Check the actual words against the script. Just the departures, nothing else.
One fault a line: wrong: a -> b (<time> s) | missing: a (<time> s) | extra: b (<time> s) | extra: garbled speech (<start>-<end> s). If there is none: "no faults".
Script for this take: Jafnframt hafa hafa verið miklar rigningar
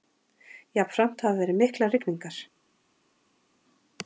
missing: hafa (1.4 s)